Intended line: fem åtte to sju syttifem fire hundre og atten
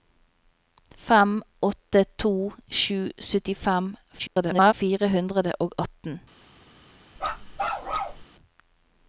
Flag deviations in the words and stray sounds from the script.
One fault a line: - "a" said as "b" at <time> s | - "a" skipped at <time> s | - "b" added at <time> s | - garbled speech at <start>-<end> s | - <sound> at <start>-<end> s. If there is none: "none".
- garbled speech at 4.2-4.7 s
- bark at 7.2-8.2 s